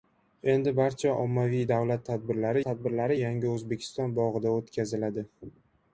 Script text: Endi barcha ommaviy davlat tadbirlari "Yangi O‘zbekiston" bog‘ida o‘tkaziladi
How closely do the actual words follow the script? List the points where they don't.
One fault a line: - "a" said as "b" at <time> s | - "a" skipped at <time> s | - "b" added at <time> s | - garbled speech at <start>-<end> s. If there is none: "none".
- "tadbirlari" added at 2.6 s